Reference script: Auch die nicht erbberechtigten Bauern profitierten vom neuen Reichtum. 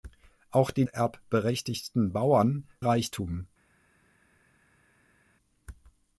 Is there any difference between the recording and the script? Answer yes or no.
yes